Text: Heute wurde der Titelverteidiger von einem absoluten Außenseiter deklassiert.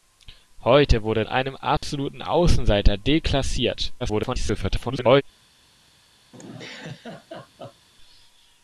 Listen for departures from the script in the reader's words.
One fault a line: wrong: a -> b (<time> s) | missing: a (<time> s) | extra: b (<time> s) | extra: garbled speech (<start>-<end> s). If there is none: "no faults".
missing: der Titelverteidiger von (1.2 s)
extra: garbled speech (4.0-5.2 s)